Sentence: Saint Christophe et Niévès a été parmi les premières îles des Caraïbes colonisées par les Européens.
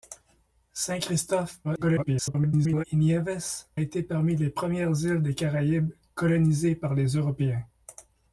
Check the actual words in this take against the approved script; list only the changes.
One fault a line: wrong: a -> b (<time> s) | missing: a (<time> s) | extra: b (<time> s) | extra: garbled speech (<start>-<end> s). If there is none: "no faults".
extra: garbled speech (1.6-2.8 s)
missing: a (3.7 s)